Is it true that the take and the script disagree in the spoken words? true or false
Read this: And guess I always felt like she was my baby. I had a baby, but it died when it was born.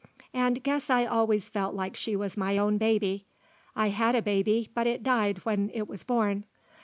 true